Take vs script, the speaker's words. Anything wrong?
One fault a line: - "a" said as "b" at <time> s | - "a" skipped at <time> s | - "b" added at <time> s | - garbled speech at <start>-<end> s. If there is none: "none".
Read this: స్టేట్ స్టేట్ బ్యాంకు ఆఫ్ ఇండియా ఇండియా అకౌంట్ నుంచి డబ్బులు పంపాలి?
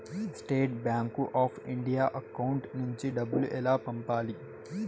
- "స్టేట్" skipped at 0.7 s
- "ఇండియా" skipped at 2.0 s
- "ఎలా" added at 3.5 s